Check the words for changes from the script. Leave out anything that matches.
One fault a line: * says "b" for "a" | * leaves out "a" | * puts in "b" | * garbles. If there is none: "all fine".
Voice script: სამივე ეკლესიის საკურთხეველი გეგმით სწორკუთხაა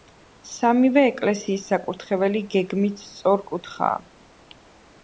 all fine